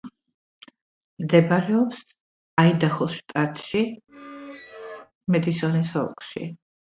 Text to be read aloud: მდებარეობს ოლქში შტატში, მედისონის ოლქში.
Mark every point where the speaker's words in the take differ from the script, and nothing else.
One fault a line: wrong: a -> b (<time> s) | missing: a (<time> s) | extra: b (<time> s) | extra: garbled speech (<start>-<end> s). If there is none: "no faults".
wrong: ოლქში -> აიდაჰოს (2.6 s)